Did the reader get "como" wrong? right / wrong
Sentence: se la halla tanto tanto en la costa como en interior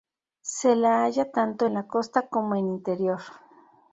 right